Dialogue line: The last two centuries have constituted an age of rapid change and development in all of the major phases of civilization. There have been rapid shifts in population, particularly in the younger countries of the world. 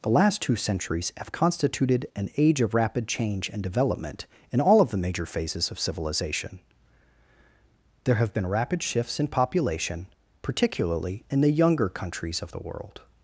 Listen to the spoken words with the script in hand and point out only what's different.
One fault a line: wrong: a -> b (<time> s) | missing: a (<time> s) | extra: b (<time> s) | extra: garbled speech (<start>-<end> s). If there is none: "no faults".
no faults